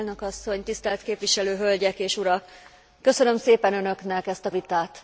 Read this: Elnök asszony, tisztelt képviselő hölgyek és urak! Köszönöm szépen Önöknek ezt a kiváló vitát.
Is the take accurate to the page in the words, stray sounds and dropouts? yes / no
no